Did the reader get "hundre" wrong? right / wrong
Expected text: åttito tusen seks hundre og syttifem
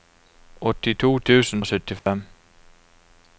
wrong